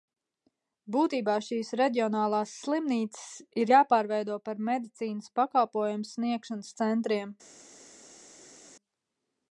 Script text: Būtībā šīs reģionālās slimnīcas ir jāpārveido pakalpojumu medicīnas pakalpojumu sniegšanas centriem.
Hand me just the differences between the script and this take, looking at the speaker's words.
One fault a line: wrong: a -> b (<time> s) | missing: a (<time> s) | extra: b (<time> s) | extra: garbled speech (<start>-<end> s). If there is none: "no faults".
wrong: pakalpojumu -> par (4.5 s)